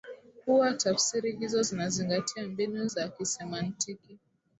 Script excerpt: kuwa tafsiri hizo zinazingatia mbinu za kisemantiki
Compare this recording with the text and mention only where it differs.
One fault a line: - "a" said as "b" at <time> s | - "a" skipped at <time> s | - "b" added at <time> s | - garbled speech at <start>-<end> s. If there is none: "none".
none